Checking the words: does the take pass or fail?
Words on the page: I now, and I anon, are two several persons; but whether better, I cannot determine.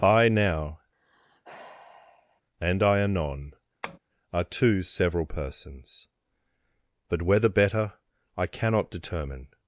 pass